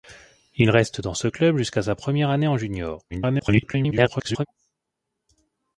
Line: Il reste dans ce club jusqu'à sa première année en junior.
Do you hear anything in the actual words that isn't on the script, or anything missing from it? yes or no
yes